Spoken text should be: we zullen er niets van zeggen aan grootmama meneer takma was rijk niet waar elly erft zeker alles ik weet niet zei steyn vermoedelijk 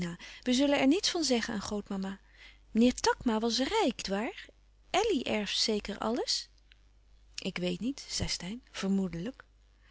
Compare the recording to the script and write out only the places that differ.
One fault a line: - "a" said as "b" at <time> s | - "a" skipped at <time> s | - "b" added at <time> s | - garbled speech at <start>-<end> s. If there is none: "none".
- "niet" skipped at 4.0 s